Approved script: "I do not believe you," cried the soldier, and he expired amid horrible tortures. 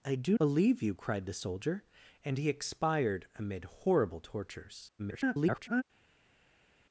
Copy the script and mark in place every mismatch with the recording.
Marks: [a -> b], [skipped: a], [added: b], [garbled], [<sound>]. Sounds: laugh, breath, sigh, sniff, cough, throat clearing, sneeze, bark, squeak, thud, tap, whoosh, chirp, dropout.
"I do [skipped: not] believe you," cried the soldier, and he expired amid horrible tortures. [garbled]